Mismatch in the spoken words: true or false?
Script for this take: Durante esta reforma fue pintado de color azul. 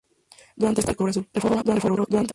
true